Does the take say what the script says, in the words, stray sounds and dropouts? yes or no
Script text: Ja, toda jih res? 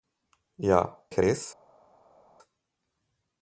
no